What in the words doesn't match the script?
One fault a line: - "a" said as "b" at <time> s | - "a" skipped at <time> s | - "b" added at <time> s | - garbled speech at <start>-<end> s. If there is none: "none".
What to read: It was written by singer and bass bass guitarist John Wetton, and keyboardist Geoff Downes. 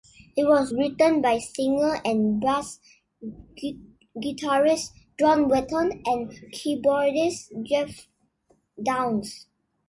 - "bass" skipped at 2.8 s